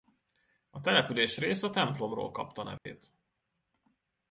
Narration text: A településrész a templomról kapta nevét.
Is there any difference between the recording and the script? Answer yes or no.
no